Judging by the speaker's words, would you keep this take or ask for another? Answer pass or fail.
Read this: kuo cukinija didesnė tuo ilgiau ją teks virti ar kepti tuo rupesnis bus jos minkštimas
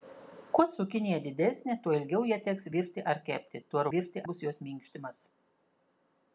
fail